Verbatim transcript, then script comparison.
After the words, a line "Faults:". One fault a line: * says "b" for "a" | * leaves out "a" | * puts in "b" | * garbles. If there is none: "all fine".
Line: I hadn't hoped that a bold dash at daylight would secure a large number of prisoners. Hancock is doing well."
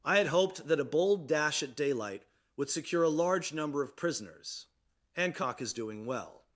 I had hoped that a bold dash at daylight would secure a large number of prisoners. Hancock is doing well."
Faults:
* says "had" for "hadn't"